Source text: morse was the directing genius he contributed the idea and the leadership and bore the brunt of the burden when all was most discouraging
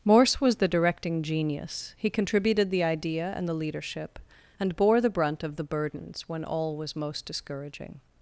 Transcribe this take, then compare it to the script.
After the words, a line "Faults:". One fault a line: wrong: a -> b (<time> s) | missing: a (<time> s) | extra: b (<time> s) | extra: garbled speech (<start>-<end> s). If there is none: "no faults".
morse was the directing genius he contributed the idea and the leadership and bore the brunt of the burdens when all was most discouraging
Faults:
wrong: burden -> burdens (5.6 s)